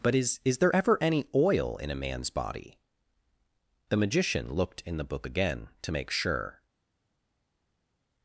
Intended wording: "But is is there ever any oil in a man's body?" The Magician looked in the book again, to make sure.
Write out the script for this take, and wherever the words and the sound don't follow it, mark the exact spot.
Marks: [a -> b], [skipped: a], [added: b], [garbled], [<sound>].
"But is is there ever any oil in a man's body?" The Magician looked in the book again, to make sure.